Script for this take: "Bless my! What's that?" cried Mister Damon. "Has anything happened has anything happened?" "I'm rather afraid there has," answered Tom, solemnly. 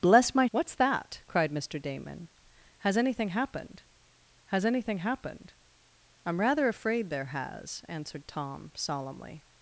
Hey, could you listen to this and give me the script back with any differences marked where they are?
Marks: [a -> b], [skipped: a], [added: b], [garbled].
"Bless my! What's that?" cried Mister Damon. "Has anything happened has anything happened?" "I'm rather afraid there has," answered Tom, solemnly.